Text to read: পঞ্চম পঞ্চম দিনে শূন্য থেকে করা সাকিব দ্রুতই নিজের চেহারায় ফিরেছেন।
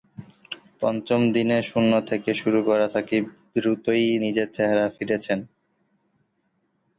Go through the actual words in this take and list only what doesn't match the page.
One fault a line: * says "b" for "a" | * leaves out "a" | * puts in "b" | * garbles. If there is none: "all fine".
* leaves out "পঞ্চম"
* puts in "শুরু"